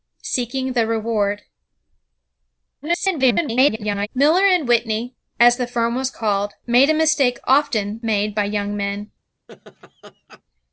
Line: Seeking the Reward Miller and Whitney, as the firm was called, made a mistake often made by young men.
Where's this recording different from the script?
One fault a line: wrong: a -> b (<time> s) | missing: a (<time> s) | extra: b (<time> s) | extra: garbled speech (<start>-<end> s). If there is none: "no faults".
extra: garbled speech (2.8-4.1 s)